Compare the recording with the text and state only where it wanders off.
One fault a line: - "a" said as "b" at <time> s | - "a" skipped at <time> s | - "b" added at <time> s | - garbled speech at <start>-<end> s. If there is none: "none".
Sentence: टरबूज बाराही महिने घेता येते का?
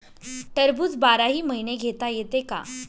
none